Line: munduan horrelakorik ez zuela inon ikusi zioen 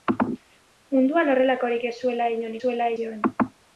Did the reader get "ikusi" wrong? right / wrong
wrong